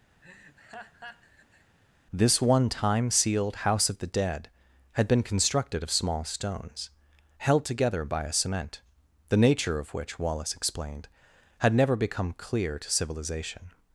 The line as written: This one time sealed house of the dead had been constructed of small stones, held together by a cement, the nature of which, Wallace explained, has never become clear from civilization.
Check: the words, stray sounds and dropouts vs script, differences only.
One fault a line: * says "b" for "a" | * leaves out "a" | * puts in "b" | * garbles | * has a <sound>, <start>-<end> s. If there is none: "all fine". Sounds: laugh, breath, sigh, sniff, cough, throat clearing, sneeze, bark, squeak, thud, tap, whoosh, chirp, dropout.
* has a laugh, 0.2-1.8 s
* says "had" for "has"
* says "to" for "from"